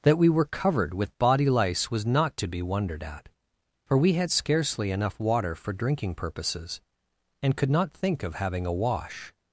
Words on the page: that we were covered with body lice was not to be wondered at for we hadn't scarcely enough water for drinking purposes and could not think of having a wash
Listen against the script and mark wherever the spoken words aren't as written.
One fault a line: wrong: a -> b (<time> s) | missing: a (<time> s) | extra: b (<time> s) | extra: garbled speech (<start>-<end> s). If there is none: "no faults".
wrong: hadn't -> had (4.1 s)